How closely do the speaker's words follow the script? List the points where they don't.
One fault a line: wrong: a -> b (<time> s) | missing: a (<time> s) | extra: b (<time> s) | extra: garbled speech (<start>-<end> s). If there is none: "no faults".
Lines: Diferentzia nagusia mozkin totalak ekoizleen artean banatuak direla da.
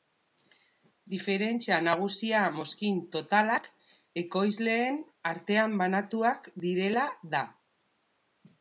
no faults